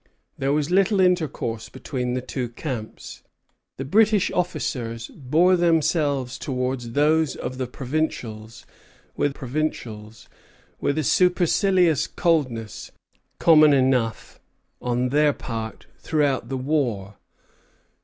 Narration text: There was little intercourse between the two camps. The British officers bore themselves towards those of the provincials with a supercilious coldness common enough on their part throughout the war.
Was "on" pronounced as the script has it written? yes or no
yes